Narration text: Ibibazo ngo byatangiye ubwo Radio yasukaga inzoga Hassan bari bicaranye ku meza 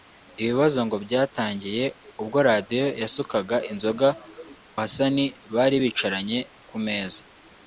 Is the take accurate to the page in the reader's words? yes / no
yes